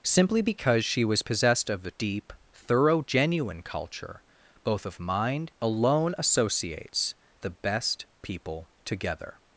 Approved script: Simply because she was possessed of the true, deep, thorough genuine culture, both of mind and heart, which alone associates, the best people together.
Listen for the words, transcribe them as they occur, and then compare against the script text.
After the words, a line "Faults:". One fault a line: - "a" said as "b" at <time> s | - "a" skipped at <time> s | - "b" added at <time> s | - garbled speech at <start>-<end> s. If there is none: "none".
Simply because she was possessed of the deep, thorough genuine culture, both of mind alone associates, the best people together.
Faults:
- "true" skipped at 1.9 s
- "and heart which" skipped at 5.5 s